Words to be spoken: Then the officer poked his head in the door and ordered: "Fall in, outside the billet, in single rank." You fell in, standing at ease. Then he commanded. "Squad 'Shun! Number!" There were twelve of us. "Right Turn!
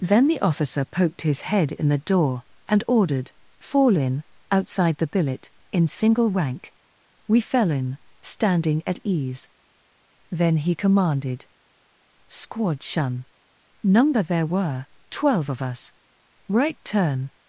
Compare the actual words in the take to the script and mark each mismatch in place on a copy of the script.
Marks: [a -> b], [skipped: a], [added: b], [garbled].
Then the officer poked his head in the door and ordered: "Fall in, outside the billet, in single rank." [You -> We] fell in, standing at ease. Then he commanded. "Squad 'Shun! Number!" There were twelve of us. "Right Turn!